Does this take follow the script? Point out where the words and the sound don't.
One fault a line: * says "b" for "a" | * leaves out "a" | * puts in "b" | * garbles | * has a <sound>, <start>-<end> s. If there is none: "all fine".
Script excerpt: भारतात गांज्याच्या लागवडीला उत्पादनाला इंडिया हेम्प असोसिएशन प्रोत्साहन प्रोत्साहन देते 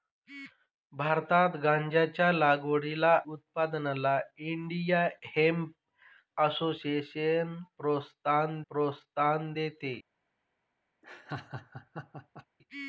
* has a laugh, 11.0-12.5 s